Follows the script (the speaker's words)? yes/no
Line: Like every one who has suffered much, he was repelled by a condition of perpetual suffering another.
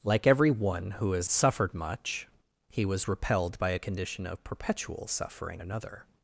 yes